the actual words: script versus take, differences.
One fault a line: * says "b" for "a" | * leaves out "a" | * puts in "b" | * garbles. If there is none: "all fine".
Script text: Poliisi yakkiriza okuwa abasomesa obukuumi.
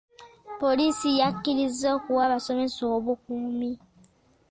all fine